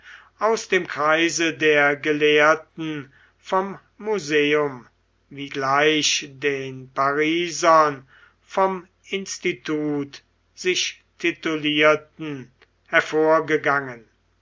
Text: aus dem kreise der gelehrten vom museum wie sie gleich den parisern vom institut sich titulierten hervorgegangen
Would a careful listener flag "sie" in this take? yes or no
yes